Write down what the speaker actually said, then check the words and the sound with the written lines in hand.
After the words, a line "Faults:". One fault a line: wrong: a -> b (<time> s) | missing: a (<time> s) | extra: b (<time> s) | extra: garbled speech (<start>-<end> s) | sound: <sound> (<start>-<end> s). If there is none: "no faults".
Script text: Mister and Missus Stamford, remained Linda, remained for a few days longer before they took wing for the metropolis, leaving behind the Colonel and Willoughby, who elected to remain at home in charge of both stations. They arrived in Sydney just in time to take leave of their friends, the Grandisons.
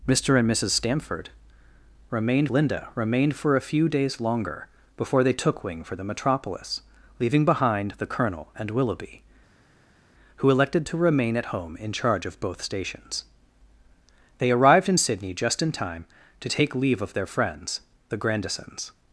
Mister and Missus Stamford, remained Linda, remained for a few days longer before they took wing for the metropolis, leaving behind the Colonel and Willoughby, who elected to remain at home in charge of both stations. They arrived in Sydney just in time to take leave of their friends, the Grandisons.
Faults:
no faults